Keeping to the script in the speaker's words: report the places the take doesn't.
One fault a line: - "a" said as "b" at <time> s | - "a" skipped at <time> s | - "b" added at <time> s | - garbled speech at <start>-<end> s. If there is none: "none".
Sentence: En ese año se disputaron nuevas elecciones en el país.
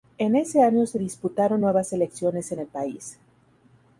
none